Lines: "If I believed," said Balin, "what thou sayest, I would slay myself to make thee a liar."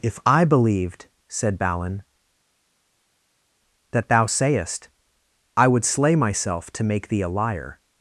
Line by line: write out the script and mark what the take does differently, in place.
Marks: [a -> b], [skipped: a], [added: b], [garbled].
"If I believed," said Balin, ["what -> that] thou sayest, I would slay myself to make thee a liar."